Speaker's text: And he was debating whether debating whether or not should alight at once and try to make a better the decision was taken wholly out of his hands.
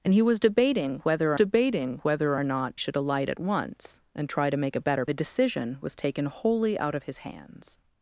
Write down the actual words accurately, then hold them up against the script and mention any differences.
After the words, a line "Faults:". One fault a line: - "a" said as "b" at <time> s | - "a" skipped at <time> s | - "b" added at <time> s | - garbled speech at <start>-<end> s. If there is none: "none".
And he was debating whether debating whether or not should alight at once and try to make a better the decision was taken wholly out of his hands.
Faults:
none